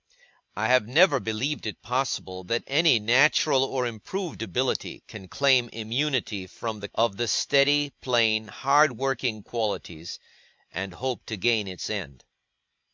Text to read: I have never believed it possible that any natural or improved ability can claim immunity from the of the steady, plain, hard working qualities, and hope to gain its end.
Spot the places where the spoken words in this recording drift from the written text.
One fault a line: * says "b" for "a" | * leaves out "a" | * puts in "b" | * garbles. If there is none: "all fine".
all fine